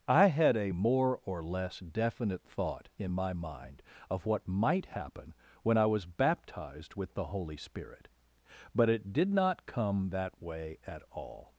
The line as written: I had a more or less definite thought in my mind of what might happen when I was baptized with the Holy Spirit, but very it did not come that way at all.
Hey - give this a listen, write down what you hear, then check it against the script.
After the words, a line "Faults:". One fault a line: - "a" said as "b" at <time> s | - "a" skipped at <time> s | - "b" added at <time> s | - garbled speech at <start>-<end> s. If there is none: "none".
I had a more or less definite thought in my mind of what might happen when I was baptized with the Holy Spirit, but it did not come that way at all.
Faults:
- "very" skipped at 8.9 s